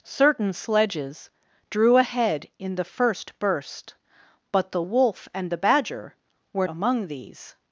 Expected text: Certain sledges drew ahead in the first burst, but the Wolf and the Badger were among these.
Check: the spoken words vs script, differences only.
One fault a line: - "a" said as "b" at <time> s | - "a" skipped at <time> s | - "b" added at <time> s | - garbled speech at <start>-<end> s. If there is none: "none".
none